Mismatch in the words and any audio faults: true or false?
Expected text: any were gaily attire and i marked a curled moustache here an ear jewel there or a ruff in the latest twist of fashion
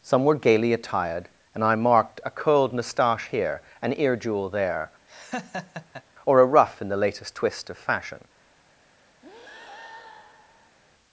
true